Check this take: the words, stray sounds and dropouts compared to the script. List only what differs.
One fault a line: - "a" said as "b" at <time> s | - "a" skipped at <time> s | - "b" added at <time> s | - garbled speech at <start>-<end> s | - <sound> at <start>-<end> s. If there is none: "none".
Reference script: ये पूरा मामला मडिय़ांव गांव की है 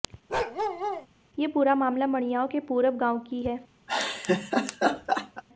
- bark at 0.3-1.1 s
- "के पूरब" added at 2.5 s
- laugh at 3.9-5.4 s